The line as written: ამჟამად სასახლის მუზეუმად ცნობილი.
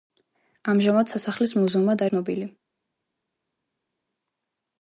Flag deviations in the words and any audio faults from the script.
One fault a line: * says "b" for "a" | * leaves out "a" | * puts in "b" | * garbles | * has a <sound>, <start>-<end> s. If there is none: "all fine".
all fine